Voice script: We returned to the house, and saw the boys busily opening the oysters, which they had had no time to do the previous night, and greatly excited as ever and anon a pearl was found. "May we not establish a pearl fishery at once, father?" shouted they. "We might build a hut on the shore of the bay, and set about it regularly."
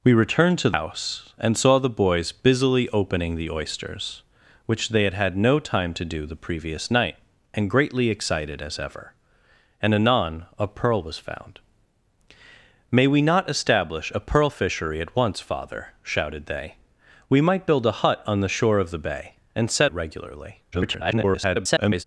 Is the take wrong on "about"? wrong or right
wrong